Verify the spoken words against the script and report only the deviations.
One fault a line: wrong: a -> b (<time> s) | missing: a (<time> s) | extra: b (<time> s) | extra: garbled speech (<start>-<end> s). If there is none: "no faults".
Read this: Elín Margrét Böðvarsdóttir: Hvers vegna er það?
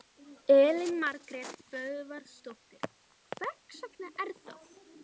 no faults